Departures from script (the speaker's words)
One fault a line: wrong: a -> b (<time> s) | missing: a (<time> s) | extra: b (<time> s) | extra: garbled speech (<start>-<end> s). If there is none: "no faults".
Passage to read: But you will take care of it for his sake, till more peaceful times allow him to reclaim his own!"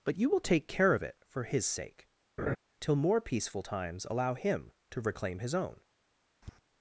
no faults